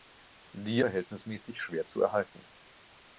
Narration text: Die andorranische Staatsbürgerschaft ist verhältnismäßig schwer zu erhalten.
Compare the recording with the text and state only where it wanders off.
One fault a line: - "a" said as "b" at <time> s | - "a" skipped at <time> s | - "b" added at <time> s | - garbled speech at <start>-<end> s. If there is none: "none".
- "andorranische Staatsbürgerschaft ist" skipped at 0.8 s